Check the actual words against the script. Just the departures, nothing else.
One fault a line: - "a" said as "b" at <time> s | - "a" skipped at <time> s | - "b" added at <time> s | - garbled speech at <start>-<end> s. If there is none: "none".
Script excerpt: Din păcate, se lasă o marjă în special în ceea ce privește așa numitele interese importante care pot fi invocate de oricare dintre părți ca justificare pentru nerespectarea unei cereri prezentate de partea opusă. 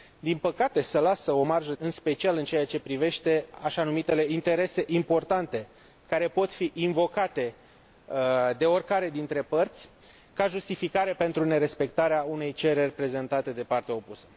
none